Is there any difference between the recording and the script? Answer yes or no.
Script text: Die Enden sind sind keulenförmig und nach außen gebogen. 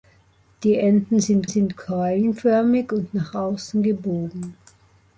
no